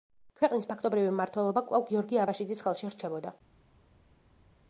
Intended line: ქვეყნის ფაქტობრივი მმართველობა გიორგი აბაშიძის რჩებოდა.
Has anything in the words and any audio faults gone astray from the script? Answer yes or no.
yes